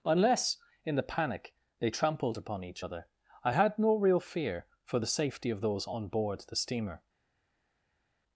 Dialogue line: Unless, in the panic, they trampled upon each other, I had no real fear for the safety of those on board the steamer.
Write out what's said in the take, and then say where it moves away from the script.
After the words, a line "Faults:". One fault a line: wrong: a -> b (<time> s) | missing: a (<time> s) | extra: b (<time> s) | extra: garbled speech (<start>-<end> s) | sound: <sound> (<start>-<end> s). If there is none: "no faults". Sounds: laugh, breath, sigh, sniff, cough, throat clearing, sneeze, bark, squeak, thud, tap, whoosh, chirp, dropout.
Unless, in the panic, they trampled upon each other, I had no real fear for the safety of those on board the steamer.
Faults:
no faults